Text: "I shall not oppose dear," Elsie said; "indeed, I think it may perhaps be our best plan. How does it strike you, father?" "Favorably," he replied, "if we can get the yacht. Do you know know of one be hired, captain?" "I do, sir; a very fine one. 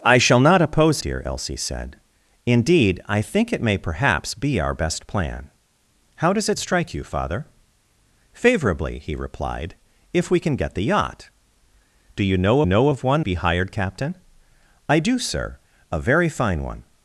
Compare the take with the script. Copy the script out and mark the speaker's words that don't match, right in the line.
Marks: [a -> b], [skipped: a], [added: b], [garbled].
"I shall not oppose dear," Elsie said; "indeed, I think it may perhaps be our best plan. How does it strike you, father?" "Favorably," he replied, "if we can get the yacht. Do you know know of one be hired, captain?" "I do, sir; a very fine one.